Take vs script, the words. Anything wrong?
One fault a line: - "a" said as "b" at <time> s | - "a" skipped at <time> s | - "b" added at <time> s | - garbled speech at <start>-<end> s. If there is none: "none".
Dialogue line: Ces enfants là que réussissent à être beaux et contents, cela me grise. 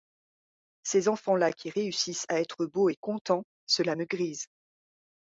- "que" said as "qui" at 1.5 s